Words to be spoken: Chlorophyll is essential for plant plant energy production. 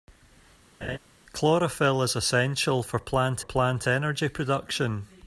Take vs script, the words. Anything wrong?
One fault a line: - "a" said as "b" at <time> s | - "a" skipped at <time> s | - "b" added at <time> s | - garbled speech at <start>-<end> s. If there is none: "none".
none